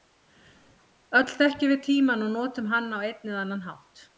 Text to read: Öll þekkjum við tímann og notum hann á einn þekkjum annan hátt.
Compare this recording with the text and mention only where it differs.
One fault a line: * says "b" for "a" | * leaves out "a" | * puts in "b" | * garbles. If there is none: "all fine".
* says "eða" for "þekkjum"